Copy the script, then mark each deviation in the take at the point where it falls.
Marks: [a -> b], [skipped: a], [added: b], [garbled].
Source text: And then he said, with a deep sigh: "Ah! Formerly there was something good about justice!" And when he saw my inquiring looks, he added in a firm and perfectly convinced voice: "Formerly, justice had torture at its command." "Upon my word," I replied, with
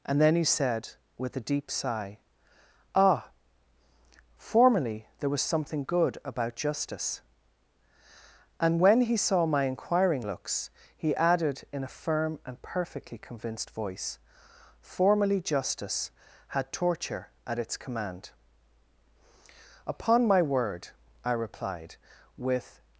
And then he said, with a deep sigh: "Ah! Formerly there was something good about justice!" And when he saw my inquiring looks, he added in a firm and perfectly convinced voice: "Formerly, justice had torture at its command." "Upon my word," I replied, with